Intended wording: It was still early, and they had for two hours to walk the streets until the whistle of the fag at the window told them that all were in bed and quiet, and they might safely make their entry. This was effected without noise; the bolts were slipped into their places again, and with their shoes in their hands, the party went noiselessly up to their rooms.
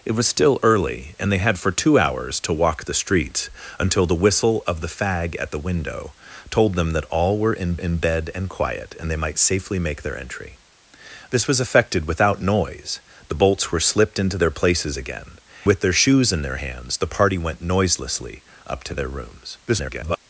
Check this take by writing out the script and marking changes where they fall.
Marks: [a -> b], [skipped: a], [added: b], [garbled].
It was still early, and they had for two hours to walk the streets until the whistle of the fag at the window told them that all were in [added: in] bed and quiet, and they might safely make their entry. This was effected without noise; the bolts were slipped into their places again, [skipped: and] with their shoes in their hands, the party went noiselessly up to their rooms. [garbled]